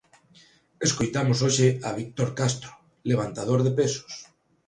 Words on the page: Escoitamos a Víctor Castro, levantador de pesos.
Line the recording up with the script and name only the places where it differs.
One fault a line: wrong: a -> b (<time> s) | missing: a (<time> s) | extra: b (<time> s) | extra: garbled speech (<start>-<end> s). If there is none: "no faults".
extra: hoxe (1.4 s)